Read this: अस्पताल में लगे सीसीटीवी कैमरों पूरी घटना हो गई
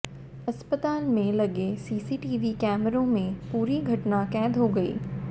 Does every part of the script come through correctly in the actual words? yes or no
no